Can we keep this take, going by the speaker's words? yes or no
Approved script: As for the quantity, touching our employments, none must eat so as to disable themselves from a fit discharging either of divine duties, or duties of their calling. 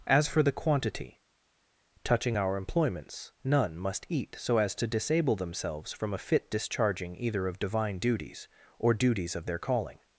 yes